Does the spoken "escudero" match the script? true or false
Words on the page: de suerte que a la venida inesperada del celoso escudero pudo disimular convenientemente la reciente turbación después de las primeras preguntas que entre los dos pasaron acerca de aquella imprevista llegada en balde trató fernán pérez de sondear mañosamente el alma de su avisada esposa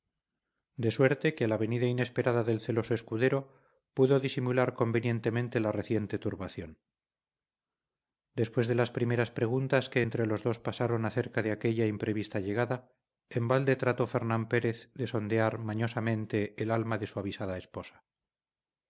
true